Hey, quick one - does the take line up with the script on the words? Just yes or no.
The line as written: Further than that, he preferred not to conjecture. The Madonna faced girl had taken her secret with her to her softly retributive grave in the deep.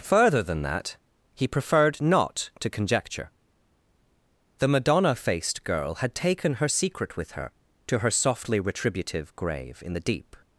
yes